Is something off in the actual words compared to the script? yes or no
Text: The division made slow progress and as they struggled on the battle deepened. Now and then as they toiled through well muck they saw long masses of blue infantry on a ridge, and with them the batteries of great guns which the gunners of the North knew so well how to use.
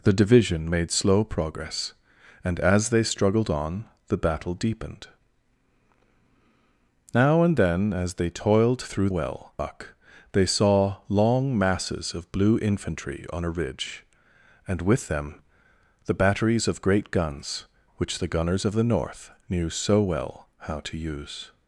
no